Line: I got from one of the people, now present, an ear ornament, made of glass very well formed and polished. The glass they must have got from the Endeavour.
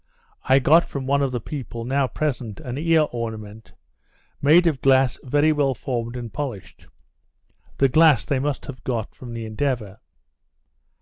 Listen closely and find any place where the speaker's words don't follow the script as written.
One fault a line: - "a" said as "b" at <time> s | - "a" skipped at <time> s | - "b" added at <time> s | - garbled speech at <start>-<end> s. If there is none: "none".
none